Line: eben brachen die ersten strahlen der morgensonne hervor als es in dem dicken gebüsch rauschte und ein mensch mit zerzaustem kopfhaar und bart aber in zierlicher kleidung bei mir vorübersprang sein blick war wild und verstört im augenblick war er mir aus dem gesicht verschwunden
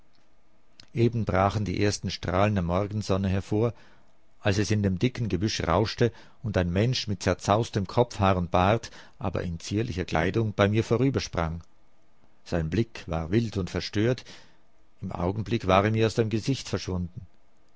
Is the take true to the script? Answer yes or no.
yes